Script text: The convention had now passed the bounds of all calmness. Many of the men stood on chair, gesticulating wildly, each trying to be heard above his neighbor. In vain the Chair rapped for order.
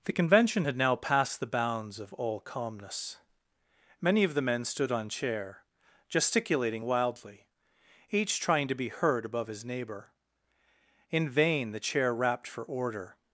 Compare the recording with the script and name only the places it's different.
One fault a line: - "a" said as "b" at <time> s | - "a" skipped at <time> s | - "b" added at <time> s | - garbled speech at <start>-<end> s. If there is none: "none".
none